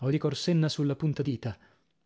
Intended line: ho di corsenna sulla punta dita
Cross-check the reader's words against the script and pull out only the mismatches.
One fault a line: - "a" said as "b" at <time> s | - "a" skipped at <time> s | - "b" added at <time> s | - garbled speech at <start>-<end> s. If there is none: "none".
none